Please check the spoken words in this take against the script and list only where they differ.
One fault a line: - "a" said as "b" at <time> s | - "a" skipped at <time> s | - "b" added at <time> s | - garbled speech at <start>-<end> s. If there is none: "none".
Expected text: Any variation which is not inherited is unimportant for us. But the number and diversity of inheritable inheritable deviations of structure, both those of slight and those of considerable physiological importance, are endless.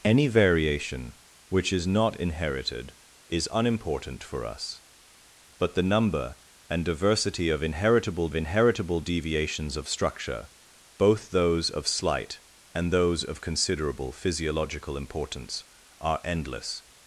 none